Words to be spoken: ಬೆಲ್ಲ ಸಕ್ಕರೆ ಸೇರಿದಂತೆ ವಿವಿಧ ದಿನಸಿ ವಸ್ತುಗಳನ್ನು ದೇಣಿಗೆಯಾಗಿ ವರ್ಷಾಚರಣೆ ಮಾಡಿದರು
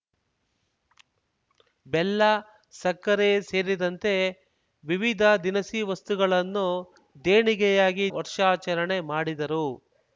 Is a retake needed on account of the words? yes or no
no